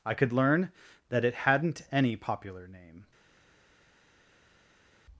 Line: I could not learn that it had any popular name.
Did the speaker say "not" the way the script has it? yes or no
no